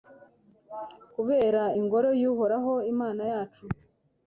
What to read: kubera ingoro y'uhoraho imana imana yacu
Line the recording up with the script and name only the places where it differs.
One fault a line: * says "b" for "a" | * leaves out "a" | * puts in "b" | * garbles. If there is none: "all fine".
* leaves out "imana"